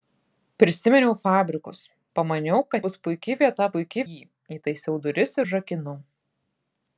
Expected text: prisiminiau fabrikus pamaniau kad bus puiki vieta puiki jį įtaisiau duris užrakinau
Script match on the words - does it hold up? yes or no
yes